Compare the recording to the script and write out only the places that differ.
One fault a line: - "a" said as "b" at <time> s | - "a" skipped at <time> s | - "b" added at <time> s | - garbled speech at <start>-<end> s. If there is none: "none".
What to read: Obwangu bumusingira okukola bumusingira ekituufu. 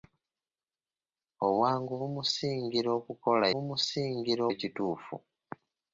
none